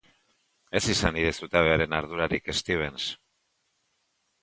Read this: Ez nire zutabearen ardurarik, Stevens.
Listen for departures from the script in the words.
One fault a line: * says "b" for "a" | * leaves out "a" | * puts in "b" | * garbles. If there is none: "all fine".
* puts in "izan"